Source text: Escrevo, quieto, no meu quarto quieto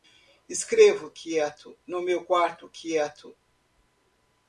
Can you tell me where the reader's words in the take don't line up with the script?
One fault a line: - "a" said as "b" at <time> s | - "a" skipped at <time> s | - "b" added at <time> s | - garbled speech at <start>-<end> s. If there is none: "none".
none